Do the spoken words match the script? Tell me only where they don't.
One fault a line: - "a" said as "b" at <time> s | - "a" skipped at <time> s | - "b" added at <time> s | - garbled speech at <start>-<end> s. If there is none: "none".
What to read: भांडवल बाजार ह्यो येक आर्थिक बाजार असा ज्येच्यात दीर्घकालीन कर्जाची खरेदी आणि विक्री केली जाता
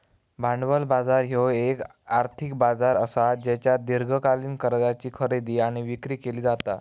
none